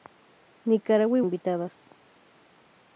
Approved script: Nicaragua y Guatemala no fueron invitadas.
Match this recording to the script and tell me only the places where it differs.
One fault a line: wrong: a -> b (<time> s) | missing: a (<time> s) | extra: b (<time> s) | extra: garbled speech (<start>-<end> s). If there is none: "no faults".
missing: Guatemala no fueron (1.2 s)